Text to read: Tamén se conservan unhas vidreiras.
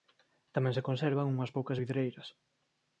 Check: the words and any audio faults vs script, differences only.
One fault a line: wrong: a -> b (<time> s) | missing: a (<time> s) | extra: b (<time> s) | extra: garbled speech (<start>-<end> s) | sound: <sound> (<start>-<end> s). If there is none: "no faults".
extra: poucas (1.6 s)